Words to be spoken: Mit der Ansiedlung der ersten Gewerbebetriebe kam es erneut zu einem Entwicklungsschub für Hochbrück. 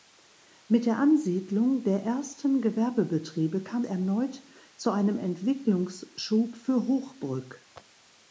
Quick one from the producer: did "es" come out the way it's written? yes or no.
no